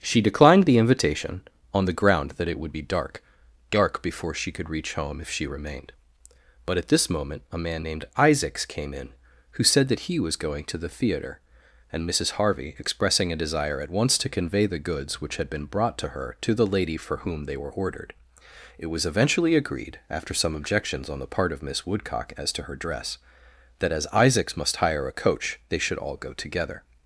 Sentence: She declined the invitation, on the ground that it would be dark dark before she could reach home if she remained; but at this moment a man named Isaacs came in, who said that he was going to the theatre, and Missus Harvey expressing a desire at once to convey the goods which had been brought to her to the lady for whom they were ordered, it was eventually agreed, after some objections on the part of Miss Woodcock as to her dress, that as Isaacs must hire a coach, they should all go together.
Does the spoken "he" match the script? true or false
true